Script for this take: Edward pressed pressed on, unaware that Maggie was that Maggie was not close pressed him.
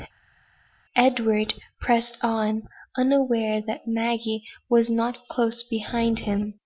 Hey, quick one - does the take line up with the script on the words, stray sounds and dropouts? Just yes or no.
no